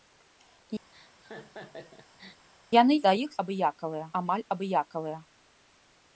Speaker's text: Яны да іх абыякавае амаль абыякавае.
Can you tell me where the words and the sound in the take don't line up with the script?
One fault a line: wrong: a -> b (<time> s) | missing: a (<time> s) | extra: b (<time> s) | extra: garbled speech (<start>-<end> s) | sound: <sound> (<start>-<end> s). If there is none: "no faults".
sound: laugh (0.9-2.5 s)